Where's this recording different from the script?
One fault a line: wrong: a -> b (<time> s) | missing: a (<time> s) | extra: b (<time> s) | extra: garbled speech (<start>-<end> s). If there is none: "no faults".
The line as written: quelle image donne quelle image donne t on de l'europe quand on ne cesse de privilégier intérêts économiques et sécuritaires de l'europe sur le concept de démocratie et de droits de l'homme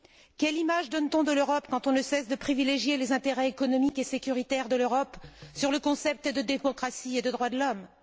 missing: quelle image donne (1.1 s)
extra: les (3.0 s)